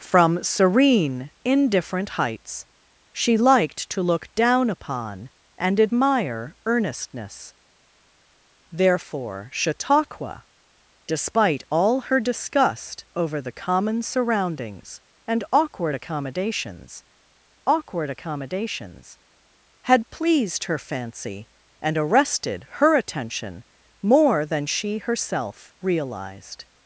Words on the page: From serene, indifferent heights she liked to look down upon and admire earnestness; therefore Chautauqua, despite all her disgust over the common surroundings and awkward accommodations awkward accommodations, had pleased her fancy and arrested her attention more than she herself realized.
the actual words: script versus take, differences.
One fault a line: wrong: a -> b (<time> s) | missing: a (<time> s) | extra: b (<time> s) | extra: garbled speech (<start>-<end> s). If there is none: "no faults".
no faults